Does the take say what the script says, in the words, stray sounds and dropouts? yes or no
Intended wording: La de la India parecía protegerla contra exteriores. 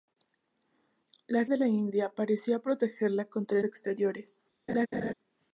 no